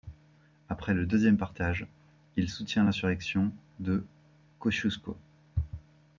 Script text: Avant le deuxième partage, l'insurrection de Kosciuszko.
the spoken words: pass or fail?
fail